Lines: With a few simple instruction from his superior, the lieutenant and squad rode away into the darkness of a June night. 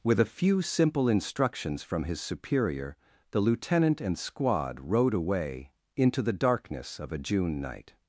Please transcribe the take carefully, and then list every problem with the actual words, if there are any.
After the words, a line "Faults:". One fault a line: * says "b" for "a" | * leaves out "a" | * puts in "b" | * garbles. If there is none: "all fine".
With a few simple instructions from his superior, the lieutenant and squad rode away into the darkness of a June night.
Faults:
* says "instructions" for "instruction"